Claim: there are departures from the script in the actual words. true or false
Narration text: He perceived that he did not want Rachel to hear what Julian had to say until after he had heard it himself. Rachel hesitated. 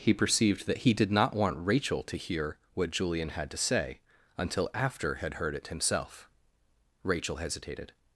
true